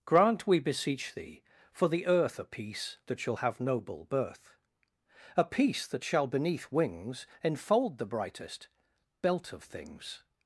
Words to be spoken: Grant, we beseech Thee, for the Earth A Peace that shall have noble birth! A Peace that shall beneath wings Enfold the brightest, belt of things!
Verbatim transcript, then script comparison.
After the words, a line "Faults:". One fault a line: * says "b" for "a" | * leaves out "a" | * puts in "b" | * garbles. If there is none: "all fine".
Grant, we beseech Thee, for the Earth A Peace that shall have noble birth! A Peace that shall beneath wings Enfold the brightest, belt of things!
Faults:
all fine